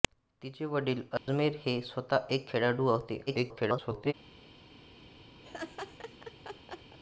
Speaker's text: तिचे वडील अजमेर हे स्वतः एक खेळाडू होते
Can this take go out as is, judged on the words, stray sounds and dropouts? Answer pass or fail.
fail